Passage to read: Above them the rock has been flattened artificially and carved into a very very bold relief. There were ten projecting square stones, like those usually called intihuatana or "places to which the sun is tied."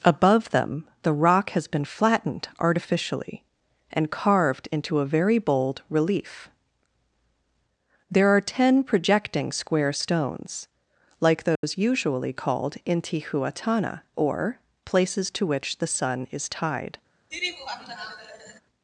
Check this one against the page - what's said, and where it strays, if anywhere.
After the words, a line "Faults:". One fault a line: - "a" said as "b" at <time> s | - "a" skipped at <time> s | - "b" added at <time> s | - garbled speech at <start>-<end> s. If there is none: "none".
Above them the rock has been flattened artificially and carved into a very bold relief. There are ten projecting square stones, like those usually called intihuatana or "places to which the sun is tied."
Faults:
- "very" skipped at 5.4 s
- "were" said as "are" at 8.3 s